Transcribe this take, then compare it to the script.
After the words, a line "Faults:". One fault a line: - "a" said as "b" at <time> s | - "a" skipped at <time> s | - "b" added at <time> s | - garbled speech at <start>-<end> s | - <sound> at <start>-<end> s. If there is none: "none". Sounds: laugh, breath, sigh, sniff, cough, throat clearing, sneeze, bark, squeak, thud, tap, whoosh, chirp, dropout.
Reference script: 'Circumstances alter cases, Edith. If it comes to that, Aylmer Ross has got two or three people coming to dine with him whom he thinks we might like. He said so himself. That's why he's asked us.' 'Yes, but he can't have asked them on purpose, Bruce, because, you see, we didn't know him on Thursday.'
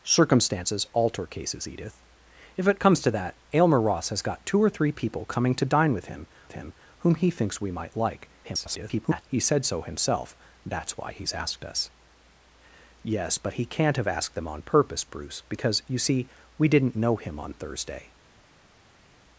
'Circumstances alter cases, Edith. If it comes to that, Aylmer Ross has got two or three people coming to dine with him him whom he thinks we might like. [garbled] He said so himself. That's why he's asked us.' 'Yes, but he can't have asked them on purpose, Bruce, because, you see, we didn't know him on Thursday.'
Faults:
- "him" added at 6.5 s
- garbled speech at 8.4-9.2 s